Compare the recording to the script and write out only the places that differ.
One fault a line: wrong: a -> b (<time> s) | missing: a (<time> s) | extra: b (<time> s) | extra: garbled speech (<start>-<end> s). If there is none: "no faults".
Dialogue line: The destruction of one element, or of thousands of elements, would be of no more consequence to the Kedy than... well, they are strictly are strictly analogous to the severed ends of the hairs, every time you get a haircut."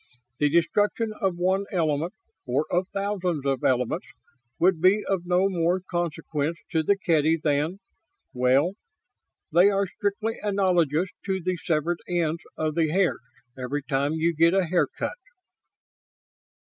missing: are strictly (10.4 s)